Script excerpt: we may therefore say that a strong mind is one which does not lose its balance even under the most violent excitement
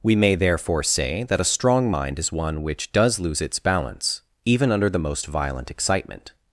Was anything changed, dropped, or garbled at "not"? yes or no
yes